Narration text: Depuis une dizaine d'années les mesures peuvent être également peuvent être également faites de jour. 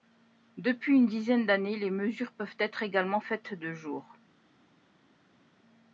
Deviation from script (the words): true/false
true